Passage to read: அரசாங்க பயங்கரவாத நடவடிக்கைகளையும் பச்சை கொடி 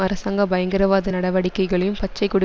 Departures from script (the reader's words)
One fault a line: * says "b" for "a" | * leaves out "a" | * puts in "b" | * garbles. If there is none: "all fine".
all fine